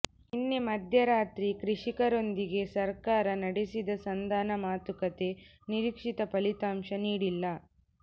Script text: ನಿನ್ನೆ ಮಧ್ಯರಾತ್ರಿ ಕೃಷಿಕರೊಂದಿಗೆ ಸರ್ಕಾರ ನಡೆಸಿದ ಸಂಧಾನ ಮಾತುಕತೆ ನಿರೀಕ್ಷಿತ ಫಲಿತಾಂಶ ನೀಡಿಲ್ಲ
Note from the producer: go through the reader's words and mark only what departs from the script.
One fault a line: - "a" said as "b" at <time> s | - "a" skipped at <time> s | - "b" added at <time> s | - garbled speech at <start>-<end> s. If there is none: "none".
none